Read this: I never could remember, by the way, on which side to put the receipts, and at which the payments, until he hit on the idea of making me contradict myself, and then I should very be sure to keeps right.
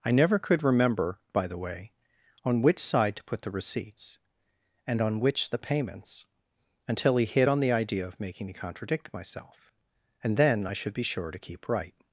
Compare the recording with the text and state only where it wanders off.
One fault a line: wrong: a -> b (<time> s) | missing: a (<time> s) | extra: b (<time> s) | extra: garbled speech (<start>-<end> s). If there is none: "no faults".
wrong: at -> on (5.0 s)
missing: very (10.9 s)
wrong: keeps -> keep (11.4 s)